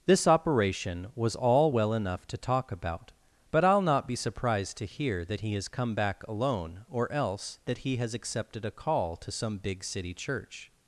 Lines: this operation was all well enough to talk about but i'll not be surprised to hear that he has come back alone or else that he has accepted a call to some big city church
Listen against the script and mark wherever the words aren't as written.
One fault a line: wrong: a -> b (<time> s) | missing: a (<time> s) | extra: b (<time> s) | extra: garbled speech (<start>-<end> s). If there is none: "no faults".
no faults